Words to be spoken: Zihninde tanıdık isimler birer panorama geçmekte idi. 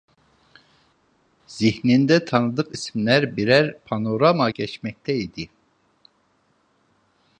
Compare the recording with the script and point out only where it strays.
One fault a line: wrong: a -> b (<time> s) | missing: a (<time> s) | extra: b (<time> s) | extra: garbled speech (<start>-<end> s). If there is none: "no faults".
no faults